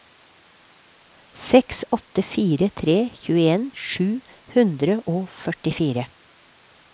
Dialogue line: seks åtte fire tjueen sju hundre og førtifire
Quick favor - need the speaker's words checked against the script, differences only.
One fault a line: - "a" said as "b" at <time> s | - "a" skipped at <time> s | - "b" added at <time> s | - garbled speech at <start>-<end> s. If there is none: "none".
- "tre" added at 2.8 s